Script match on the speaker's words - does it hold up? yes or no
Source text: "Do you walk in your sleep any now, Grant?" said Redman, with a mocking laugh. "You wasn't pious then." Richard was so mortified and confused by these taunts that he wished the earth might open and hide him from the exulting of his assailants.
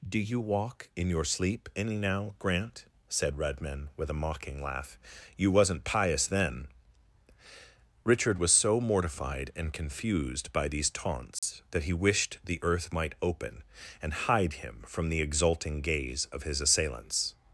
no